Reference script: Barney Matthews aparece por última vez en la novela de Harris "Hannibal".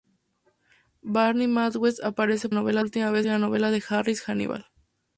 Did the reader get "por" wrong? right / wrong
wrong